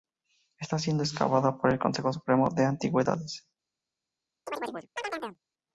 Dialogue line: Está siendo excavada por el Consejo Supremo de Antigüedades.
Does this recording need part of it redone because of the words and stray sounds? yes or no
yes